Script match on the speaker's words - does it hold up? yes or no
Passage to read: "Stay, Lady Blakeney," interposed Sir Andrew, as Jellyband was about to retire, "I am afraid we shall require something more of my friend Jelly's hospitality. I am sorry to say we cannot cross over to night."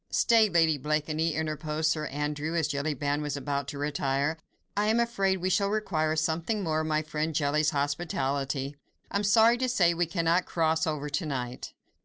yes